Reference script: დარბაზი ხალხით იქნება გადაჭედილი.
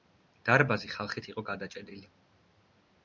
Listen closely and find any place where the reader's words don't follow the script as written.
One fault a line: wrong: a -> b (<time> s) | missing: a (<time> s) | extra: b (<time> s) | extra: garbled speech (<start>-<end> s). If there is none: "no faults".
wrong: იქნება -> იყო (1.3 s)